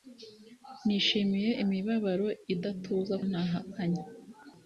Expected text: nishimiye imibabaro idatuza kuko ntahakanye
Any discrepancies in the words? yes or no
yes